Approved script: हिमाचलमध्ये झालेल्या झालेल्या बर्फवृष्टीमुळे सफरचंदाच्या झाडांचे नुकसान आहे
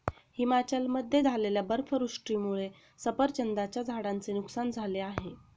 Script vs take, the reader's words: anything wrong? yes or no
yes